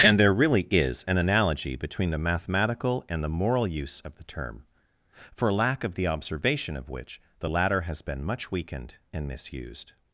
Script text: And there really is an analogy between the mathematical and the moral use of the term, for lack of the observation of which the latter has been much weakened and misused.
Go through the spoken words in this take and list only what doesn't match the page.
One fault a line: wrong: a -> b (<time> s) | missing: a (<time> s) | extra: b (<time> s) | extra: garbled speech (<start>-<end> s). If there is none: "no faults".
no faults